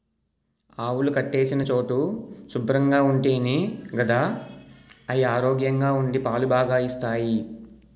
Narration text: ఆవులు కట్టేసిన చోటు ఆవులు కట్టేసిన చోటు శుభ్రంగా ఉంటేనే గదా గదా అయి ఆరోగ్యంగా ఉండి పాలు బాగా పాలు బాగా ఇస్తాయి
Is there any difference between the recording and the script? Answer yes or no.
yes